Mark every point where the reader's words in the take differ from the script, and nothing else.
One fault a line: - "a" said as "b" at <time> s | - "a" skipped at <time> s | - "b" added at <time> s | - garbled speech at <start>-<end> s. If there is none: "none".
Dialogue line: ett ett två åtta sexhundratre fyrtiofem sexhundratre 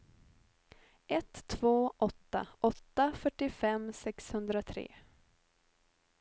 - "ett" skipped at 1.4 s
- "sexhundratre" said as "åtta" at 2.6 s